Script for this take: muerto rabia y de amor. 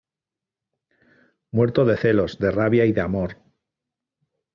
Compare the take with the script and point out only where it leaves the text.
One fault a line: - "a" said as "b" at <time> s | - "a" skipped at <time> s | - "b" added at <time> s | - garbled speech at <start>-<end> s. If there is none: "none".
- "de celos de" added at 1.9 s